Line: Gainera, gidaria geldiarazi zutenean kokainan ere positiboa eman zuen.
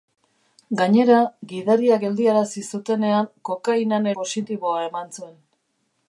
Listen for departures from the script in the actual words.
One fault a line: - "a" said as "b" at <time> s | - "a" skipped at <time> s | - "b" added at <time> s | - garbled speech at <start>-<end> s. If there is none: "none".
- "ere" skipped at 4.1 s